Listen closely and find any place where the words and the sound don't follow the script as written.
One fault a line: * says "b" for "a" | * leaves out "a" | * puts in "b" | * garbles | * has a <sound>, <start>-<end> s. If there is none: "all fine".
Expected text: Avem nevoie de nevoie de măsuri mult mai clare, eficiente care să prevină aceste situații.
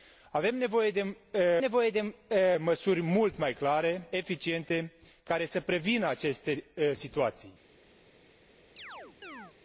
* has a chirp, 8.8-9.5 s